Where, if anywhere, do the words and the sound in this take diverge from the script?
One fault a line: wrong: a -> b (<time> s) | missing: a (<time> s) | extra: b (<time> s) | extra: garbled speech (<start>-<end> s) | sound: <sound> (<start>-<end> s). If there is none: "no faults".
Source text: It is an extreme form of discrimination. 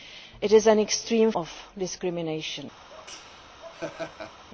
missing: form (1.3 s)
sound: laugh (2.9-4.4 s)